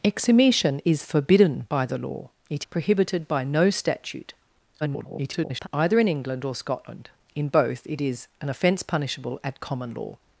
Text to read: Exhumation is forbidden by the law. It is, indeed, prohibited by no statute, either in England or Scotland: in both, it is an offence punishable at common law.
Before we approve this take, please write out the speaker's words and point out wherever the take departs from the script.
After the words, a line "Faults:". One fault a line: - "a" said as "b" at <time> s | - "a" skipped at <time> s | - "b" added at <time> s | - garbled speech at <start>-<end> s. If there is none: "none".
Exhumation is forbidden by the law. It prohibited by no statute, [garbled] either in England or Scotland: in both, it is an offence punishable at common law.
Faults:
- "is indeed" skipped at 2.6 s
- garbled speech at 4.8-5.7 s